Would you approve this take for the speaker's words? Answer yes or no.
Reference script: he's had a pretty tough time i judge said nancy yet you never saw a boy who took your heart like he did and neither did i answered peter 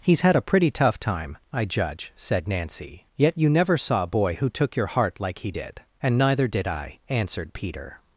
yes